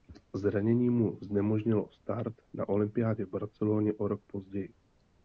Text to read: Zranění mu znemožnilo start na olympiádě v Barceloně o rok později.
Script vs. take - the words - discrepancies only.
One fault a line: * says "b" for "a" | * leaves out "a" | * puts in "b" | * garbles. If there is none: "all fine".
all fine